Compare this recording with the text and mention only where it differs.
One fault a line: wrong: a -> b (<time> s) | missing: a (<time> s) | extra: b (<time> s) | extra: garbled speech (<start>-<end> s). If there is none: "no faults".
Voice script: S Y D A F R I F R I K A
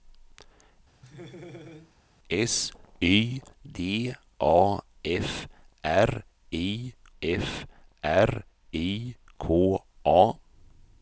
no faults